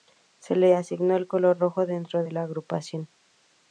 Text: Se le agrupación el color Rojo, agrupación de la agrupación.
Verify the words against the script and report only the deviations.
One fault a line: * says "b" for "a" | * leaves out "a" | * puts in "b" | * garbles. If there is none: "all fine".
* says "asignó" for "agrupación"
* says "dentro" for "agrupación"